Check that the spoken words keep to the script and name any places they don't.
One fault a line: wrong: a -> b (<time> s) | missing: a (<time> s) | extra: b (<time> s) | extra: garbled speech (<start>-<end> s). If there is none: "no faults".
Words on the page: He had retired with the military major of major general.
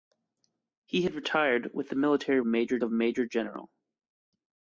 no faults